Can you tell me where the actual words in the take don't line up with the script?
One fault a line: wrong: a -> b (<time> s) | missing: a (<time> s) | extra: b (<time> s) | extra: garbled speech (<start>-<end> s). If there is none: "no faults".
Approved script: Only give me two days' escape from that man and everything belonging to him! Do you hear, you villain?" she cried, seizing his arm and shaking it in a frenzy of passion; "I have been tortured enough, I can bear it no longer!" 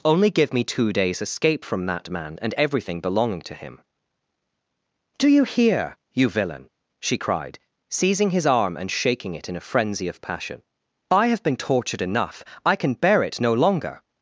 no faults